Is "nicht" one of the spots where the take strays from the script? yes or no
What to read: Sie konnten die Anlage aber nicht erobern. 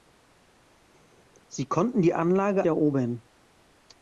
yes